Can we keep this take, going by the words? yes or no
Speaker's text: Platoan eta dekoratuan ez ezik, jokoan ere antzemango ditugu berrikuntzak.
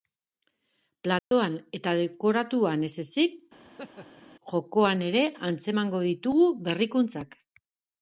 yes